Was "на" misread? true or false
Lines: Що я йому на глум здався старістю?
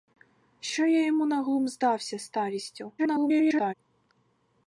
false